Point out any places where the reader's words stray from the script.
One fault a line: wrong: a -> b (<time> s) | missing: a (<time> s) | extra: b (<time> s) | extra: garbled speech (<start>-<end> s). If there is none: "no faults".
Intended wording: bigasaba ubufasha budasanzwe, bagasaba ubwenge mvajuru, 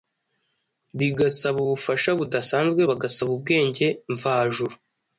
no faults